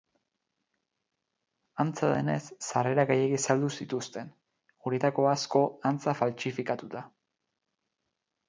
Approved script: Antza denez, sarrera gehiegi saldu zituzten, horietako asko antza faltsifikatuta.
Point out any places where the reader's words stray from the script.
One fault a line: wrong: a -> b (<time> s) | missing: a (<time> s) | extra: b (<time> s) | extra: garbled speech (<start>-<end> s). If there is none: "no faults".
no faults